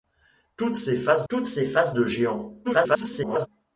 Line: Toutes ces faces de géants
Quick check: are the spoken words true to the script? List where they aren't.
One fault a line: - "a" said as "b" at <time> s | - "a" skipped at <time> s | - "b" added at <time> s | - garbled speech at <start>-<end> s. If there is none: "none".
- "toutes ces faces" added at 1.3 s
- garbled speech at 2.6-3.5 s